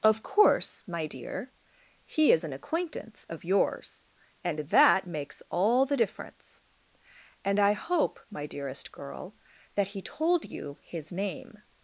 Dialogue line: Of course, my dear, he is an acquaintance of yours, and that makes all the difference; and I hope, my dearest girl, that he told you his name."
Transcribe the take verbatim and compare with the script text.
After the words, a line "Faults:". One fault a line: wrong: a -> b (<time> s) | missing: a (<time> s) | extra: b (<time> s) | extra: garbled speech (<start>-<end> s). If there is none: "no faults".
Of course, my dear, he is an acquaintance of yours, and that makes all the difference; and I hope, my dearest girl, that he told you his name."
Faults:
no faults